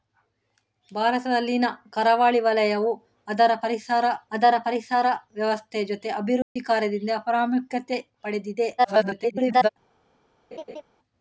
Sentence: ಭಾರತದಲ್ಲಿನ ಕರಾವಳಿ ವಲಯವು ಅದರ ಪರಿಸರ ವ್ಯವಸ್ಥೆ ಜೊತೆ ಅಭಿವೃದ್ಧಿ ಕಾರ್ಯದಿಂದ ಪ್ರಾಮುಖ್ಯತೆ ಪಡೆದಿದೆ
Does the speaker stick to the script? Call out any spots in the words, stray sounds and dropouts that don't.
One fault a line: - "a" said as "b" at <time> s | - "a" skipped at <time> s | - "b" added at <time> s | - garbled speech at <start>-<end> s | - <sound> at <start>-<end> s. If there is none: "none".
- "ಅದರ ಪರಿಸರ" added at 4.3 s
- dropout at 6.4-6.6 s
- garbled speech at 8.8-9.7 s
- laugh at 10.5-10.8 s